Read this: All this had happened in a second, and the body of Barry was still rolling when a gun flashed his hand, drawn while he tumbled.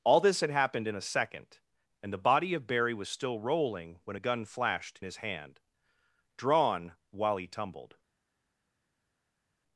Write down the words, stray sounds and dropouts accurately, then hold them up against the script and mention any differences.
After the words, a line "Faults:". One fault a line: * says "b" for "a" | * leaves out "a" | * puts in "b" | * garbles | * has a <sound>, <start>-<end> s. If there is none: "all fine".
All this had happened in a second, and the body of Barry was still rolling when a gun flashed his hand, drawn while he tumbled.
Faults:
all fine